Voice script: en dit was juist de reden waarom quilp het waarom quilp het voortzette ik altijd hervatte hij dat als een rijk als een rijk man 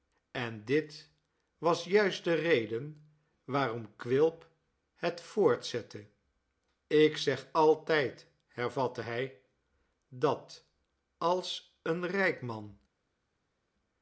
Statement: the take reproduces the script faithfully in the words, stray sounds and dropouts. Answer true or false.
false